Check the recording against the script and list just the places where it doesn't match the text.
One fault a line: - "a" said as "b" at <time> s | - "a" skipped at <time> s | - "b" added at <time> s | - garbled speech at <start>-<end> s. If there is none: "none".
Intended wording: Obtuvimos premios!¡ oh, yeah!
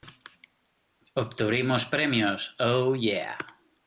none